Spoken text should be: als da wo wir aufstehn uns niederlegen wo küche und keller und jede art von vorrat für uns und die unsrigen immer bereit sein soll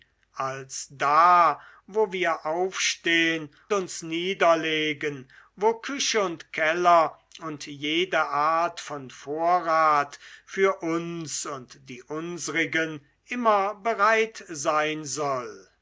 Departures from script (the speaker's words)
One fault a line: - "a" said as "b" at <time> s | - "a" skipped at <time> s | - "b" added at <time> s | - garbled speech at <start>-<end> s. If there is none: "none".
none